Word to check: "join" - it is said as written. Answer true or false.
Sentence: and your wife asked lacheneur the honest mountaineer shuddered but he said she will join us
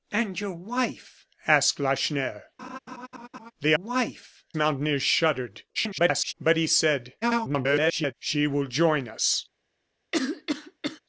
true